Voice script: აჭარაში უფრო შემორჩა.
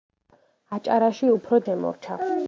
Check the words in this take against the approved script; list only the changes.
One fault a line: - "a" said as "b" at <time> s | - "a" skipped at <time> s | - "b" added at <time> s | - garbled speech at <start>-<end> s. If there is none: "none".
none